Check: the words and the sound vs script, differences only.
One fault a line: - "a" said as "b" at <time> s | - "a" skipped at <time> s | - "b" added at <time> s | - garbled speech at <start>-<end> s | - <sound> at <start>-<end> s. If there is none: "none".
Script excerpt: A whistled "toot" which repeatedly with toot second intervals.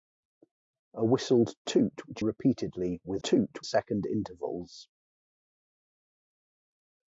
none